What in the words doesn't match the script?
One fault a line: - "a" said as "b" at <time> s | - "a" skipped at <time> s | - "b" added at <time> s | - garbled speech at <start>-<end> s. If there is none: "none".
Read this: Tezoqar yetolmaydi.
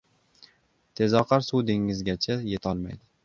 - "suv dengizgacha" added at 1.5 s